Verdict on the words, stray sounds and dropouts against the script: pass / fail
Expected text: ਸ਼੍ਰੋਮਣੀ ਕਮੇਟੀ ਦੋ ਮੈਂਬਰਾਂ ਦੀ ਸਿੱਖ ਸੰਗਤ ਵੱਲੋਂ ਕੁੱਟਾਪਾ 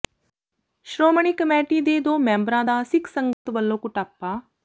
fail